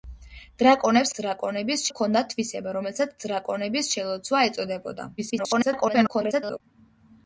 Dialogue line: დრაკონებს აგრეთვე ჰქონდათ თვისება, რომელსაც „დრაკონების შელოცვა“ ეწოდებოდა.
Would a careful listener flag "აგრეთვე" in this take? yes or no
yes